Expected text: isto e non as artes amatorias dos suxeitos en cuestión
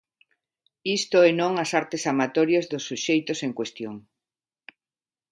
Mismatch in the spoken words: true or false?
false